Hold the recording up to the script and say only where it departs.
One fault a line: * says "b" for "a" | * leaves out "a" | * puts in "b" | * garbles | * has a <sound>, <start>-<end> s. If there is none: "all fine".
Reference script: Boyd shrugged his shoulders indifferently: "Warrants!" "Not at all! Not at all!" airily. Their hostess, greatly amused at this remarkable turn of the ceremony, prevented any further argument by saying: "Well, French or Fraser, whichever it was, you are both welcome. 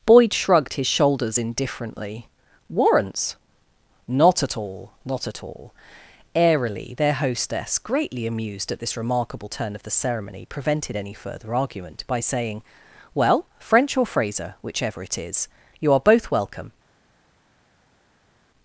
* says "is" for "was"